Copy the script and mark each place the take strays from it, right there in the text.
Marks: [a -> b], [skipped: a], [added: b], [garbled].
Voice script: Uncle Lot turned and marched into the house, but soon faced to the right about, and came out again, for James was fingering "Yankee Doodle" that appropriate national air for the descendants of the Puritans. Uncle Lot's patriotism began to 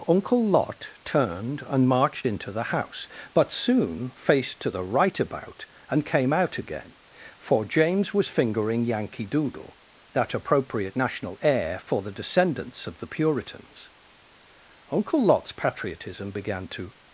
Uncle Lot turned and marched into the house, but soon faced to the right about, and came out again, for James was fingering "Yankee Doodle" that appropriate national air for the descendants of the Puritans. Uncle Lot's patriotism began to